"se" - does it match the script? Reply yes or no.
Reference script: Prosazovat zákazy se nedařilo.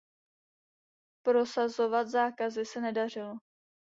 yes